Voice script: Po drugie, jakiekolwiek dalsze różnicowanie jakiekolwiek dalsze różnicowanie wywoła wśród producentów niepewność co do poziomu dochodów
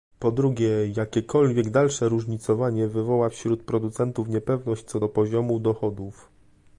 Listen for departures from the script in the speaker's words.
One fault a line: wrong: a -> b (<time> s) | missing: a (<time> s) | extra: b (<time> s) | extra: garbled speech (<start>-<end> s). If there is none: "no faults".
missing: jakiekolwiek dalsze różnicowanie (2.9 s)